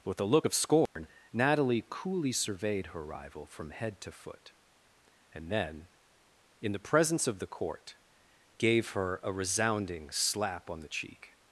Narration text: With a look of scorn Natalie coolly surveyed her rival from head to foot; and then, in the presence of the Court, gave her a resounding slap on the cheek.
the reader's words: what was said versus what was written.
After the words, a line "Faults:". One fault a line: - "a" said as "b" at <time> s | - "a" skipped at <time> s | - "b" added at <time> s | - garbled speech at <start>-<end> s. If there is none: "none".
With a look of scorn Natalie coolly surveyed her rival from head to foot; and then, in the presence of the Court, gave her a resounding slap on the cheek.
Faults:
none